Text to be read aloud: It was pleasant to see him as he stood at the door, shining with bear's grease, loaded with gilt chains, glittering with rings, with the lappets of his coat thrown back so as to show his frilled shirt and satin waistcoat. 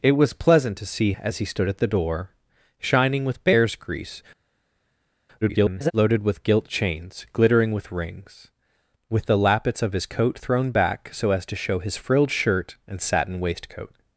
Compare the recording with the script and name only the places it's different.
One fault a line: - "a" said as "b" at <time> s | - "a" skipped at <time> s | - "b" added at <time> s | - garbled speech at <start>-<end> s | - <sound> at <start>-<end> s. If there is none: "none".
- "him" skipped at 1.1 s
- garbled speech at 5.4-5.9 s